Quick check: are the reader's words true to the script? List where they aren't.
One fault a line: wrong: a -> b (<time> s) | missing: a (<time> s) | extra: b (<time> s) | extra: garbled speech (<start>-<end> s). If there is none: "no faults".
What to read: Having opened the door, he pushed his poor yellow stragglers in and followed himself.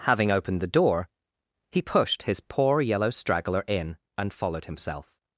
wrong: stragglers -> straggler (3.1 s)